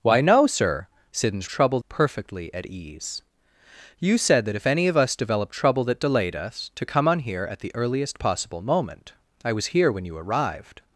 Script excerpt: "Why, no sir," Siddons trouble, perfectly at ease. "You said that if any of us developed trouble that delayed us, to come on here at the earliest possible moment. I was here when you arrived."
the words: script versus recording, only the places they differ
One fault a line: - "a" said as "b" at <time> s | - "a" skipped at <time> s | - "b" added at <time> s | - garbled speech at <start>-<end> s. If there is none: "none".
none